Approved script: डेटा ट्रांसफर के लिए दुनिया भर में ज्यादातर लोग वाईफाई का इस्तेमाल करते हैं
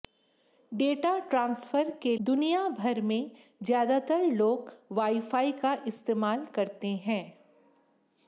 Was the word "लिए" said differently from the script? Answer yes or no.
yes